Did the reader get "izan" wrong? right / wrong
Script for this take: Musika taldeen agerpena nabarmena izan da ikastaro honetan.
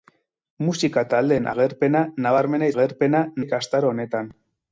wrong